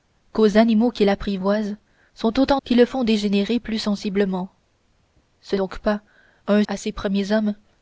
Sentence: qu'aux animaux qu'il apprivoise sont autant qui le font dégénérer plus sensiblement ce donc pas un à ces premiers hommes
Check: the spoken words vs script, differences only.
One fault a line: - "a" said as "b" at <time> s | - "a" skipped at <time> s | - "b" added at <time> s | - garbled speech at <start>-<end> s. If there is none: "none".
none